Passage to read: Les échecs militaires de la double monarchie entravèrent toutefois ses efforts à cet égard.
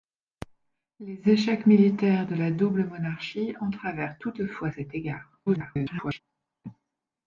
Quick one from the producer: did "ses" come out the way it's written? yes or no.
no